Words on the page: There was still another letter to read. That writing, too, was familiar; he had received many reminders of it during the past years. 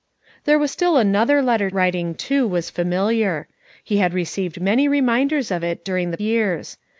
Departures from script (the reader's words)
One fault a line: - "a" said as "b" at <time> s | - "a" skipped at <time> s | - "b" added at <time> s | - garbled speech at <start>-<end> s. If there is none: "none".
- "to read That" skipped at 1.7 s
- "past" skipped at 6.2 s